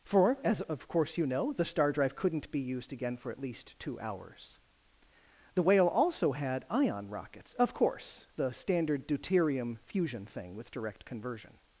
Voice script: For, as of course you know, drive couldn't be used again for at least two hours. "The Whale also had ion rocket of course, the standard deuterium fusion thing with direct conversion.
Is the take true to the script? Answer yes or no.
no